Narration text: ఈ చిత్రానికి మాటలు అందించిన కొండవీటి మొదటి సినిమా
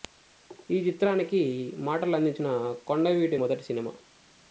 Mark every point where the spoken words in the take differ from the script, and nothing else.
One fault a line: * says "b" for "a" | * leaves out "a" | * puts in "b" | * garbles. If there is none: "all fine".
all fine